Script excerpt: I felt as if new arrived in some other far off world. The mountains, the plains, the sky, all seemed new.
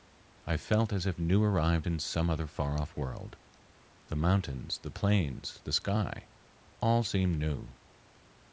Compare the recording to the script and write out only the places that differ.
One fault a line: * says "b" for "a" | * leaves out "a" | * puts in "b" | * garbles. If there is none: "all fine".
all fine